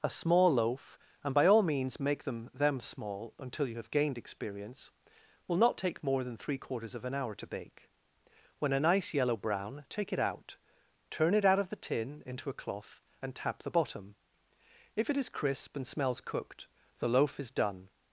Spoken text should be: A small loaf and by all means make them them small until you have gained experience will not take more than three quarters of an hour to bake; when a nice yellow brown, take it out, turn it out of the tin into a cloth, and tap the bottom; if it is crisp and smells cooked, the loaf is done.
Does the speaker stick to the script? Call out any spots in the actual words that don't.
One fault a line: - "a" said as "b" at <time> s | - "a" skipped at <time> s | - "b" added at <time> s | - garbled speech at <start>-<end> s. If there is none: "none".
none